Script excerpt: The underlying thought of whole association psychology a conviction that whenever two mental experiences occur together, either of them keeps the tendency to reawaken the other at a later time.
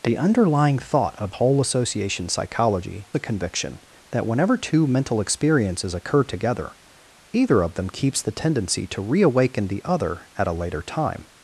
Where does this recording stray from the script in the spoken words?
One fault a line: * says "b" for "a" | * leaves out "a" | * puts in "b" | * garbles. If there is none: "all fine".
all fine